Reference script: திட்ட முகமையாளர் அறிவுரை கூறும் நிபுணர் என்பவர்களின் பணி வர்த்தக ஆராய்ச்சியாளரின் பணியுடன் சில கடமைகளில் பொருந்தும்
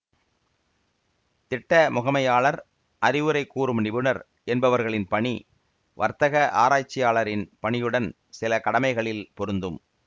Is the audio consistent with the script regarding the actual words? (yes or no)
yes